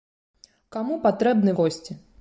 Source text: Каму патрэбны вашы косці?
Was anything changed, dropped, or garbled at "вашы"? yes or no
yes